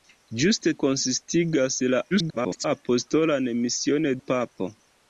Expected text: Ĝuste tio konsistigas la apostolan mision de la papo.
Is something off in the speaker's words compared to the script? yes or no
yes